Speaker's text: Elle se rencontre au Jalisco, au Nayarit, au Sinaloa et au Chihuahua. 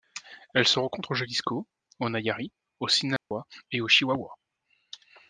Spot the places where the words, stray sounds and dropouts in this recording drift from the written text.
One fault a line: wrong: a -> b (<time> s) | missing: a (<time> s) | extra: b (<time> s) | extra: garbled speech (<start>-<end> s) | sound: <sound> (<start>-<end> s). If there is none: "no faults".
sound: dropout (3.2-3.3 s)